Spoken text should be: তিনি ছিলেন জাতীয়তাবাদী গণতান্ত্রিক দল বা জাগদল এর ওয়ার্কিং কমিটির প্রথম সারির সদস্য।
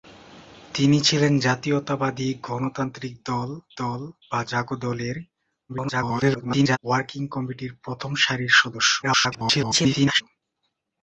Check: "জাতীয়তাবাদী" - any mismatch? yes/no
no